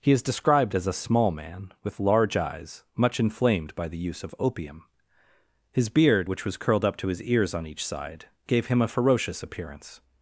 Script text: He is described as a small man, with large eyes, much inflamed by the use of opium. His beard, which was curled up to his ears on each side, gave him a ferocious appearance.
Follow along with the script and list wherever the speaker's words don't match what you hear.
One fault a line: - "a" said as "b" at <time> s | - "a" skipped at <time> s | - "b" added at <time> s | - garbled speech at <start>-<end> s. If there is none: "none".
none